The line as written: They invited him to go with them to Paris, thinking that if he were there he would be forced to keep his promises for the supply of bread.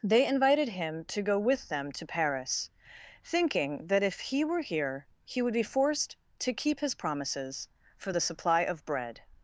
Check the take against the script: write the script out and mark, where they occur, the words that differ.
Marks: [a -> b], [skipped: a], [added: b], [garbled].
They invited him to go with them to Paris, thinking that if he were [there -> here] he would be forced to keep his promises for the supply of bread.